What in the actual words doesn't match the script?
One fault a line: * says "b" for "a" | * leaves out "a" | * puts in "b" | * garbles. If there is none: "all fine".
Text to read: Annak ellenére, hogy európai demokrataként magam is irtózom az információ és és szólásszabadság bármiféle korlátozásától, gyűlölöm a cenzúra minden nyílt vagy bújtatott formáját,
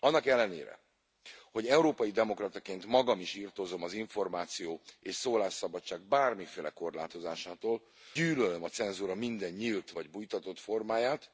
* leaves out "és"